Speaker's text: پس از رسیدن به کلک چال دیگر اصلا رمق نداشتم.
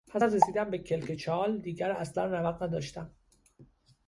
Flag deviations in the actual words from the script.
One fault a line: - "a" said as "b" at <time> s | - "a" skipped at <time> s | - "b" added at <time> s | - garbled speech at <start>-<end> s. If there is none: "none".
none